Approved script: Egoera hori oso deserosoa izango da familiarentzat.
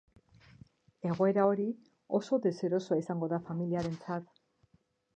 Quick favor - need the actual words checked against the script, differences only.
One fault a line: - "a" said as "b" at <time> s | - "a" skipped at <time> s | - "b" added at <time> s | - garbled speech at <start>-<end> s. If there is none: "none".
none